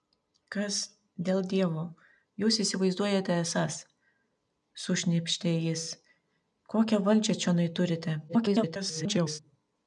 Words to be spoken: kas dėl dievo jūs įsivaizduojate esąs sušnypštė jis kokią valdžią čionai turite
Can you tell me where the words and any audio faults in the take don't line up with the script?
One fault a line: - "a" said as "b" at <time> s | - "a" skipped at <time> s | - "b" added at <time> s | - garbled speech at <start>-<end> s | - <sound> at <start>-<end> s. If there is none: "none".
- garbled speech at 8.3-9.4 s